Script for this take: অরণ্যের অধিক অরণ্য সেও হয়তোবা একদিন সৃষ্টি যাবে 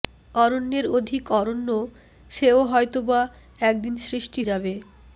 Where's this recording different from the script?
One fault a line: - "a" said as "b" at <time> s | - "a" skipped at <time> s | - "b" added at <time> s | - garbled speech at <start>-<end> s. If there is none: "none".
none